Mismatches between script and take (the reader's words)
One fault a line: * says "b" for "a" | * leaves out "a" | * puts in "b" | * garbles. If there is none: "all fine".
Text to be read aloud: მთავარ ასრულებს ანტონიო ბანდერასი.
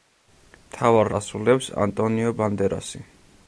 all fine